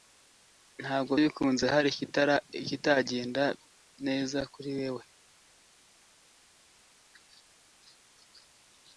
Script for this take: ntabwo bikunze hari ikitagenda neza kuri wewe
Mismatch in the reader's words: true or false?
false